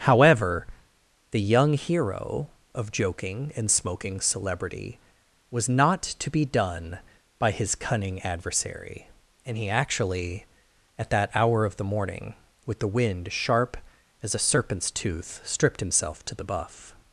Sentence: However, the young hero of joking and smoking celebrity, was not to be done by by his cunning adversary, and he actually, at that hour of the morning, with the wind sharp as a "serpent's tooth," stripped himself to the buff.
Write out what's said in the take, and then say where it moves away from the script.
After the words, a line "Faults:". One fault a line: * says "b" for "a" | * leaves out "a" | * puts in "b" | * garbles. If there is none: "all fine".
However, the young hero of joking and smoking celebrity, was not to be done by his cunning adversary, and he actually, at that hour of the morning, with the wind sharp as a "serpent's tooth," stripped himself to the buff.
Faults:
* leaves out "by"